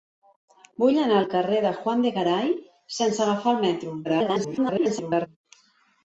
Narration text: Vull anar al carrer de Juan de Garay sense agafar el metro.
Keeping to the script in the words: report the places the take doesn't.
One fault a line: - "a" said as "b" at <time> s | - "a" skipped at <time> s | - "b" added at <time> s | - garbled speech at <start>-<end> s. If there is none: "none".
- garbled speech at 4.0-5.3 s